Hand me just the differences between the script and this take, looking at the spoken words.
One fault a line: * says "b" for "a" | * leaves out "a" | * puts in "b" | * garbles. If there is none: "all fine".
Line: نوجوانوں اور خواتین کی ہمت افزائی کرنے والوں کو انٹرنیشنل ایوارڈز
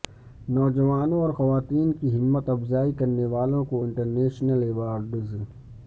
all fine